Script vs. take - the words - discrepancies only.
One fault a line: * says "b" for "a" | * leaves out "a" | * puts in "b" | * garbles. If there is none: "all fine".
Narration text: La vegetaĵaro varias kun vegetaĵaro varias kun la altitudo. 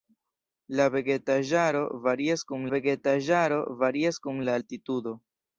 all fine